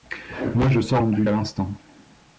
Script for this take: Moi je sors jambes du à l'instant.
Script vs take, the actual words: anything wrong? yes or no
no